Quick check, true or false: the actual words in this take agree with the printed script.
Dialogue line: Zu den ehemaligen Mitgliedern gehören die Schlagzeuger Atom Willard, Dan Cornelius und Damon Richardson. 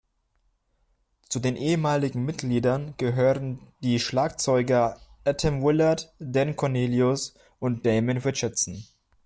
true